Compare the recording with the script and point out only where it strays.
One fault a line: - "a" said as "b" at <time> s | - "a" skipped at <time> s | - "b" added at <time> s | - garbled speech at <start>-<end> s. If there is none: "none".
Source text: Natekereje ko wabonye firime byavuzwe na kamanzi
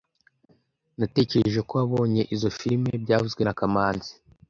- "izoi" added at 2.3 s